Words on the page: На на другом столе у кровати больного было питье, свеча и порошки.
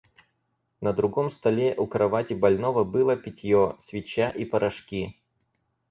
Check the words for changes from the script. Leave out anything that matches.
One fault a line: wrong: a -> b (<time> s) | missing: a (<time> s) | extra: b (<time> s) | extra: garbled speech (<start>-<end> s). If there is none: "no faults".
missing: на (0.9 s)